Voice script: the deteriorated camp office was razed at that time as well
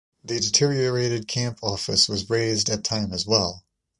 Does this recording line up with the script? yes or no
no